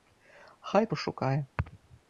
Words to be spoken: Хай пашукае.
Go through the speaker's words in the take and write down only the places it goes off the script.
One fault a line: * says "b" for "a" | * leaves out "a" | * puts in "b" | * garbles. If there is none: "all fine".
all fine